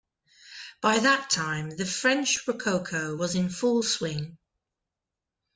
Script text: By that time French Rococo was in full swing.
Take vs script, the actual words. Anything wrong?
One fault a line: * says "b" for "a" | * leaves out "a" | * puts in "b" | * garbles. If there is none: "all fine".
* puts in "the"